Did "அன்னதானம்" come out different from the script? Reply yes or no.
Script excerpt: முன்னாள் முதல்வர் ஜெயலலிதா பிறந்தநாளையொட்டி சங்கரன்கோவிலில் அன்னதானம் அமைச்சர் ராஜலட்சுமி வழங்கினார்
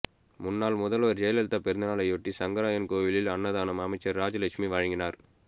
no